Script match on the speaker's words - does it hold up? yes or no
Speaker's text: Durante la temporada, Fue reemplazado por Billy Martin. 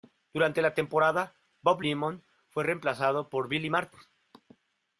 no